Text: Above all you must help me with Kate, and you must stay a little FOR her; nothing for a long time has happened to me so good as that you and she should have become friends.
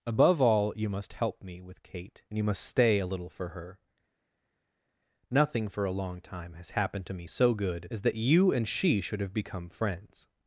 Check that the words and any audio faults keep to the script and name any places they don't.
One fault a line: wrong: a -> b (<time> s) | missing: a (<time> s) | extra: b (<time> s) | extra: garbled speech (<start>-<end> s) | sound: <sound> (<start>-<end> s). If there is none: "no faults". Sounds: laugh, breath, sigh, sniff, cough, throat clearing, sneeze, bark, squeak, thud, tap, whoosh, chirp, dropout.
no faults